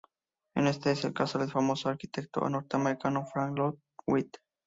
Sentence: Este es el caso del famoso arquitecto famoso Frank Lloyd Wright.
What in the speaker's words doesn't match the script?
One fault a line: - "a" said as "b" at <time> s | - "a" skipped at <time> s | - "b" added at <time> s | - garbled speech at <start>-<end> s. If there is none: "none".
- "famoso" said as "norteamericano" at 2.5 s